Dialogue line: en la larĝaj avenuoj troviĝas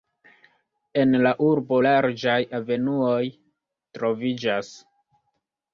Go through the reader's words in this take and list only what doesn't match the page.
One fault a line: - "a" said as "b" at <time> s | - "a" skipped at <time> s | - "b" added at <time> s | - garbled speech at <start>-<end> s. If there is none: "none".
- "urbo" added at 1.5 s